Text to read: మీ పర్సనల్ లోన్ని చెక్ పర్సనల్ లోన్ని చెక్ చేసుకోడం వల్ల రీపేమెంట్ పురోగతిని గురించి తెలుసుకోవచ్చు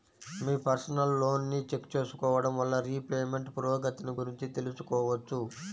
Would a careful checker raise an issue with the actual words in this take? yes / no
yes